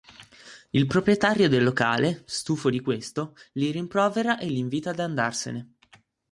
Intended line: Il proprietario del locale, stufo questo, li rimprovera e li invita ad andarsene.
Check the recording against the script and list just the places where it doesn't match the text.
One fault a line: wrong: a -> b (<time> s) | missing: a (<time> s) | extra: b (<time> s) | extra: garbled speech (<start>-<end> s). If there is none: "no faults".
extra: di (2.7 s)